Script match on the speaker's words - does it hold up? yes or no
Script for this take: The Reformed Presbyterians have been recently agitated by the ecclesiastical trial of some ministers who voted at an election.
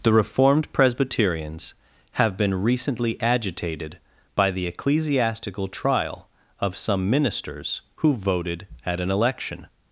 yes